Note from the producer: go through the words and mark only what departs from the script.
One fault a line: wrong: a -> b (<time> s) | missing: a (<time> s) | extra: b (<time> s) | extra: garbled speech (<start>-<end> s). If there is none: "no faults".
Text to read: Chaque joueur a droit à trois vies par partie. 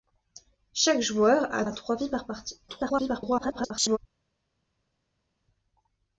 missing: droit (1.6 s)
extra: garbled speech (2.7-4.0 s)